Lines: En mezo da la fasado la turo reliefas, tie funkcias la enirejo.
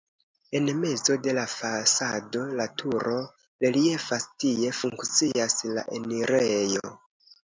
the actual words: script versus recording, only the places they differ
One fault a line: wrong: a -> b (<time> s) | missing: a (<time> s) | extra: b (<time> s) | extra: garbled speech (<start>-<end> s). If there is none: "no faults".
wrong: da -> de (1.2 s)